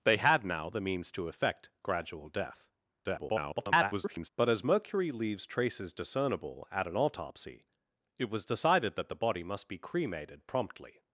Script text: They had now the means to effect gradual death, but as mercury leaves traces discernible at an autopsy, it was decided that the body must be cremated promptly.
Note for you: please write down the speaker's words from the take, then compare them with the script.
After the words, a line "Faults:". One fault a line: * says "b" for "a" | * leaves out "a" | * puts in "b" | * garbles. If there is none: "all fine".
They had now the means to effect gradual death, [garbled] but as mercury leaves traces discernible at an autopsy, it was decided that the body must be cremated promptly.
Faults:
* garbles